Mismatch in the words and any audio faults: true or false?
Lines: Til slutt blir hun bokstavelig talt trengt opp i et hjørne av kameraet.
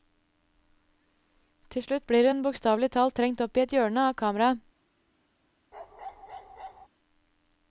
true